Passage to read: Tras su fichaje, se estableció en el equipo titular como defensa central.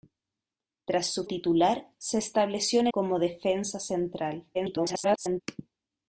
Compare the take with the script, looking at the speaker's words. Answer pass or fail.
fail